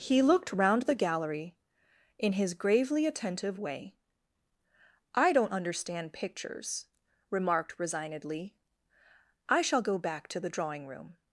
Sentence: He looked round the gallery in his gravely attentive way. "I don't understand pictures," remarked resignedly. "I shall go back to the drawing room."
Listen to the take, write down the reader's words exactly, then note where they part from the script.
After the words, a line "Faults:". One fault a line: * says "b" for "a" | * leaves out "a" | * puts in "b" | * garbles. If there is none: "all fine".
He looked round the gallery in his gravely attentive way. "I don't understand pictures," remarked resignedly. "I shall go back to the drawing room."
Faults:
all fine